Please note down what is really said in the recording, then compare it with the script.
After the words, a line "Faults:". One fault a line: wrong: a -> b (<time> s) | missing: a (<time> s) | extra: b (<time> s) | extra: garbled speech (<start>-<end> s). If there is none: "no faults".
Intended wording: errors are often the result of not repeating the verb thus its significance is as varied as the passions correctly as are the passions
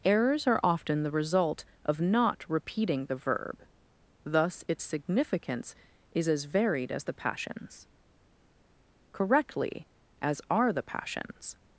errors are often the result of not repeating the verb thus its significance is as varied as the passions correctly as are the passions
Faults:
no faults